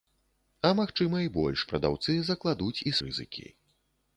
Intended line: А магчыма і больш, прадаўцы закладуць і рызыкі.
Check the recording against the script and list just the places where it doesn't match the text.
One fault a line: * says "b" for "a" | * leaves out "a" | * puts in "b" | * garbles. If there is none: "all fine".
all fine